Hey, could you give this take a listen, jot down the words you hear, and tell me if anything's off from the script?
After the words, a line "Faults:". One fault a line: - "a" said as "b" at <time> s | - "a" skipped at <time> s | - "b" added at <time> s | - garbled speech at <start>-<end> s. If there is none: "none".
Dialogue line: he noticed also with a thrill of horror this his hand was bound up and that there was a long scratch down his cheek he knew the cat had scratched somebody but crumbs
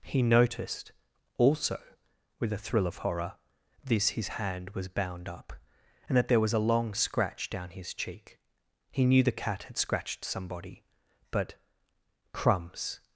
he noticed also with a thrill of horror this his hand was bound up and that there was a long scratch down his cheek he knew the cat had scratched somebody but crumbs
Faults:
none